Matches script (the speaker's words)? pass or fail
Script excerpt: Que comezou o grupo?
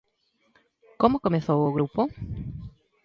fail